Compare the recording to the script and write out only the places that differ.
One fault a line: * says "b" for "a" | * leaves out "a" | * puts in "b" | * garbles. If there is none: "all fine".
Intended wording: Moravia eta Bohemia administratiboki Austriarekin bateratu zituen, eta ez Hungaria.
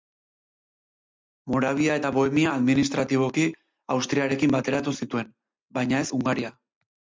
* says "baina" for "eta"